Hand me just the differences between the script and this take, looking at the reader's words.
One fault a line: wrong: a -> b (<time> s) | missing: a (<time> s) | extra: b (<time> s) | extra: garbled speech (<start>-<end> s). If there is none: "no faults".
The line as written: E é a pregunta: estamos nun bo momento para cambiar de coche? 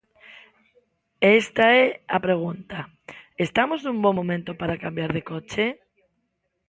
extra: esta (1.4 s)